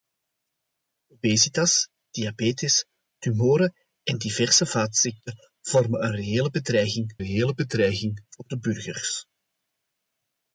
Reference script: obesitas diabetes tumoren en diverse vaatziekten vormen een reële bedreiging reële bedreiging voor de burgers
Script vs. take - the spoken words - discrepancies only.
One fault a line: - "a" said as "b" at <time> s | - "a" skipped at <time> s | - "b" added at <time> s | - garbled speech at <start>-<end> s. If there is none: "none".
none